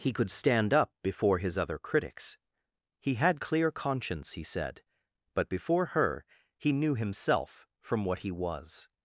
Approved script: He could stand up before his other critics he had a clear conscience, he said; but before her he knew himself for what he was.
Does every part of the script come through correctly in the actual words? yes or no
no